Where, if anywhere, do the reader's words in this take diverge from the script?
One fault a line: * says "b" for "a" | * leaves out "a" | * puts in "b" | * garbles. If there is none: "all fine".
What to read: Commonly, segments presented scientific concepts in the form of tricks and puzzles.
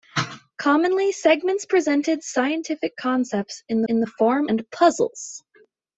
* puts in "in"
* leaves out "of tricks"